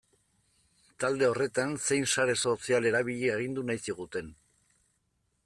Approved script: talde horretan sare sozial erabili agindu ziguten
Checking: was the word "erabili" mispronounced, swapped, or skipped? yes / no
no